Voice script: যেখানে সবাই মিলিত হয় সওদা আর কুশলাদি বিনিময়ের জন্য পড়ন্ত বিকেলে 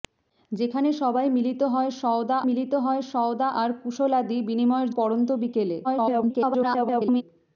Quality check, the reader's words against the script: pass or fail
fail